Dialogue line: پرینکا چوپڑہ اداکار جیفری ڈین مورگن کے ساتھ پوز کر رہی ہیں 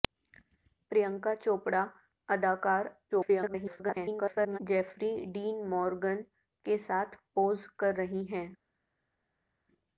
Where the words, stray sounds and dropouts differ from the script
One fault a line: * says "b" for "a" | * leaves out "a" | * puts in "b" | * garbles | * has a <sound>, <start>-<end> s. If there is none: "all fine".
* garbles